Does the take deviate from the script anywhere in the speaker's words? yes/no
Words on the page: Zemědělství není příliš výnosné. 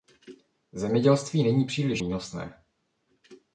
no